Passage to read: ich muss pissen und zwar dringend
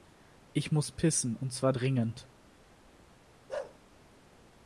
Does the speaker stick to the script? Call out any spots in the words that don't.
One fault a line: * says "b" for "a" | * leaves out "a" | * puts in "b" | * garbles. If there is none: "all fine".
all fine